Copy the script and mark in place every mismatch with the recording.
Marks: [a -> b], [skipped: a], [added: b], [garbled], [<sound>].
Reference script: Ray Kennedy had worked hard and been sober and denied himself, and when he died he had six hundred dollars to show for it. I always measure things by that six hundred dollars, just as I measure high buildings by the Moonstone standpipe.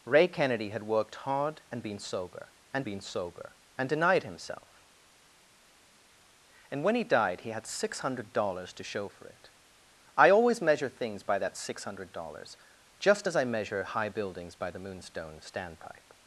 Ray Kennedy had worked hard and been sober and [added: been sober and] denied himself, and when he died he had six hundred dollars to show for it. I always measure things by that six hundred dollars, just as I measure high buildings by the Moonstone standpipe.